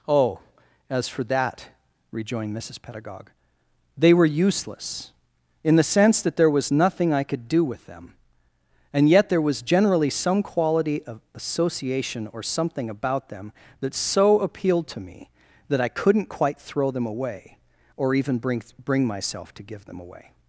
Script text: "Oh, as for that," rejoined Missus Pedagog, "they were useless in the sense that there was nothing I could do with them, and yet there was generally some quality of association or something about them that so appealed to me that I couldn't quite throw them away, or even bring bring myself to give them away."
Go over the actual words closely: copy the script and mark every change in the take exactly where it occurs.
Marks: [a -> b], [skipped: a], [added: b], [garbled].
"Oh, as for that," rejoined Missus Pedagog, "they were useless in the sense that there was nothing I could do with them, and yet there was generally some quality of association or something about them that so appealed to me that I couldn't quite throw them away, or even bring bring myself to give them away."